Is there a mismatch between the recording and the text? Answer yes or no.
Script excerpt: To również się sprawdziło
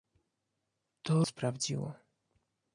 yes